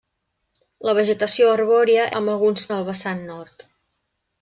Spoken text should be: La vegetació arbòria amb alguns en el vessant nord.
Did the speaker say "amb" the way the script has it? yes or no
yes